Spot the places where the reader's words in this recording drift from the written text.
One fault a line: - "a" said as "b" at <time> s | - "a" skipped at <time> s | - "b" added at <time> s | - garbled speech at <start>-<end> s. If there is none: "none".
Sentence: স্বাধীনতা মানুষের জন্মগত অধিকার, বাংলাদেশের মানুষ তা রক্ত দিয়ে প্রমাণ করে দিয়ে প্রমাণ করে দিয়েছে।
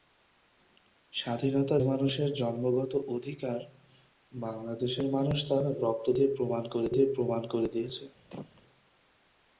none